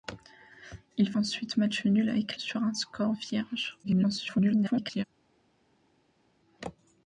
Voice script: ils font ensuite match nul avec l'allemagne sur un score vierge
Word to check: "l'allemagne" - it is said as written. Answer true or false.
false